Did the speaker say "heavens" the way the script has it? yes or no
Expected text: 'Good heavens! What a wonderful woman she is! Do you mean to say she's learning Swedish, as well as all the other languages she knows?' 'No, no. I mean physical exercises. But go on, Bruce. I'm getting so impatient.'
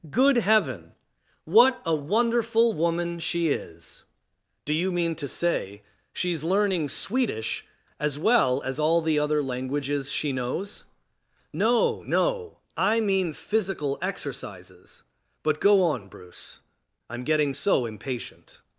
no